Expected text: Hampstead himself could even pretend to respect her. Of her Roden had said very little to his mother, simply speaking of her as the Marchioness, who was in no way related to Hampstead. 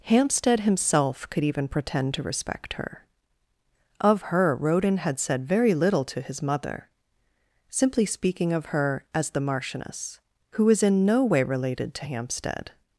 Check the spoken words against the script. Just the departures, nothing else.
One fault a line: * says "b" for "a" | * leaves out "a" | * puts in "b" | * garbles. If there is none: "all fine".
all fine